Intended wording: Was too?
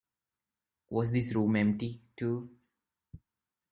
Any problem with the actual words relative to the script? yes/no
yes